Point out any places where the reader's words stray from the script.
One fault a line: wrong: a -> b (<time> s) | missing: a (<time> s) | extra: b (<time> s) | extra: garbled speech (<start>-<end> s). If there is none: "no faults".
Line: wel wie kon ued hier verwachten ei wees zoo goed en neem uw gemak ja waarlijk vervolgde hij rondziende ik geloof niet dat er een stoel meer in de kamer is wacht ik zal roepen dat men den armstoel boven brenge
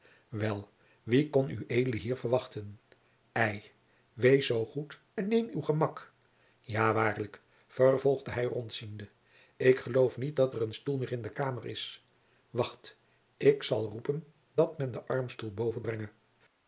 no faults